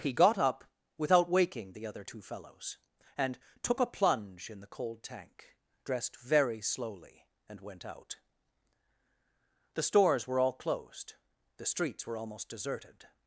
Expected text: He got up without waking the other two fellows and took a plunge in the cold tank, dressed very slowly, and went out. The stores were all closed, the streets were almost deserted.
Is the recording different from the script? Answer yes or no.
no